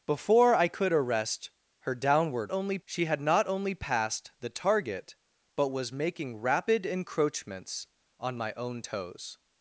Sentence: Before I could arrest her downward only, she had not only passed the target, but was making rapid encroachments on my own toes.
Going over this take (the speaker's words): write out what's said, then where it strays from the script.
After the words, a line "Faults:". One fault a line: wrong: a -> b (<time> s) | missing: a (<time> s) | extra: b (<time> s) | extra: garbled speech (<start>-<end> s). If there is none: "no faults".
Before I could arrest her downward only, she had not only passed the target, but was making rapid encroachments on my own toes.
Faults:
no faults